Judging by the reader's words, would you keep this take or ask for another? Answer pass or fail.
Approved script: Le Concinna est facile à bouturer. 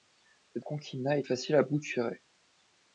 pass